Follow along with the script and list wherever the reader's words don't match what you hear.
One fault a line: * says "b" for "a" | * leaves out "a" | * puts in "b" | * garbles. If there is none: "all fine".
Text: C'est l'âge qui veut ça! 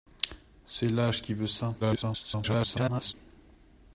* garbles